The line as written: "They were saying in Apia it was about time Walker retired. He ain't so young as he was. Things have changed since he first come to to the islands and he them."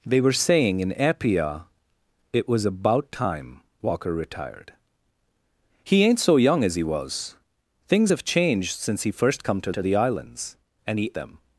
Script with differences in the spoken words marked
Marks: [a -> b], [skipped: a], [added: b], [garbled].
"They were saying in Apia it was about time Walker retired. He ain't so young as he was. Things have changed since he first come to to the islands and he them."